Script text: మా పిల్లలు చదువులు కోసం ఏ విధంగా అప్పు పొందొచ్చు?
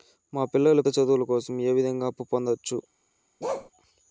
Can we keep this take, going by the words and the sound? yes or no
no